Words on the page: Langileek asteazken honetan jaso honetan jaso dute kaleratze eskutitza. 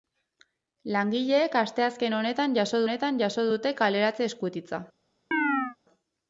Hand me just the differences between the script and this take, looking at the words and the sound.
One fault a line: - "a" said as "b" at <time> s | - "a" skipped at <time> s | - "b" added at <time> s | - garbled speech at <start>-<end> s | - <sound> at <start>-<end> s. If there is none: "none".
- chirp at 5.3-5.8 s